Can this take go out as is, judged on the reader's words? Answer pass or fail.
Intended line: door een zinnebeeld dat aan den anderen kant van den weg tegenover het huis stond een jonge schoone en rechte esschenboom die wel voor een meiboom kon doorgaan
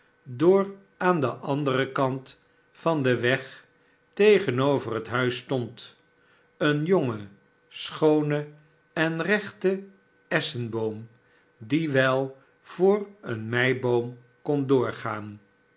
fail